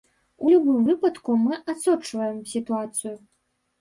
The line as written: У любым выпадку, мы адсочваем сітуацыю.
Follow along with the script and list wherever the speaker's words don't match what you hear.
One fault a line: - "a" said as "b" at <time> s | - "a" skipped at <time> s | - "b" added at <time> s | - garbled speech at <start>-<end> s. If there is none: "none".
none